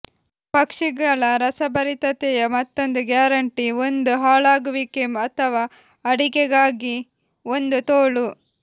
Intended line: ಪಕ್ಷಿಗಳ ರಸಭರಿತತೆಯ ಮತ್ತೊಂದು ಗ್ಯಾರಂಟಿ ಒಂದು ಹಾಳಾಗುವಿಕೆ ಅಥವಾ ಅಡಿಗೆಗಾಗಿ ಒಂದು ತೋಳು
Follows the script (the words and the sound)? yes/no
yes